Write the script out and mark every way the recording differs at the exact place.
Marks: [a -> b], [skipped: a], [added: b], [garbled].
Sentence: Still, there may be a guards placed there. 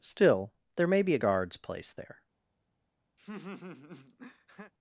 Still, there may be a guards placed there.